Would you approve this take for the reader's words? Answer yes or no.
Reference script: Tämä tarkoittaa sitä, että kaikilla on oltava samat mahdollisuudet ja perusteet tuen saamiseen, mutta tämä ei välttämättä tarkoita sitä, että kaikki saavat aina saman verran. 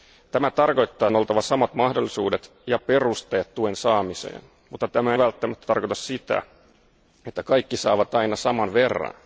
no